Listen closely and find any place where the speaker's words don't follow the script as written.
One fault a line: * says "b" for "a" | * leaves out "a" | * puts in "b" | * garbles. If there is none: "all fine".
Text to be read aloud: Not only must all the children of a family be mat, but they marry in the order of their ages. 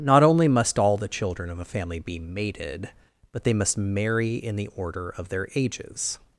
* says "mated" for "mat"
* puts in "must"